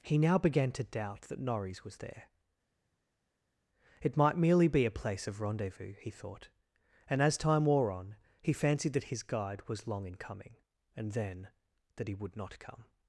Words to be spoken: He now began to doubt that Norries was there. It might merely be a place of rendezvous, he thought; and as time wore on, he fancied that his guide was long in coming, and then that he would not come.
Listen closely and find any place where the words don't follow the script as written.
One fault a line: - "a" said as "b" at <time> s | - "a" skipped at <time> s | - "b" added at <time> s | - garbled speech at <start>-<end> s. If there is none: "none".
none